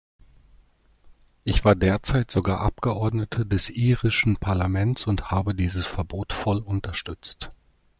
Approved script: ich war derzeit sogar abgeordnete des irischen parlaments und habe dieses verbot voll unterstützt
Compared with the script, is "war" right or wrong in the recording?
right